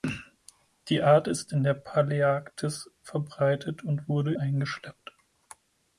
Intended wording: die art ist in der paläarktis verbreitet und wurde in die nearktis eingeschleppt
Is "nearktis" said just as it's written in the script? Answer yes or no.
no